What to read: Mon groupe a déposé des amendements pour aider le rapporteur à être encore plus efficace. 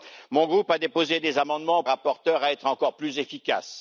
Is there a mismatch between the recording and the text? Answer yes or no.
yes